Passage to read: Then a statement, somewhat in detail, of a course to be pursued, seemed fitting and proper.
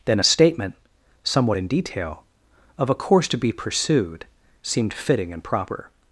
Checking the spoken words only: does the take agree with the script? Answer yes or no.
yes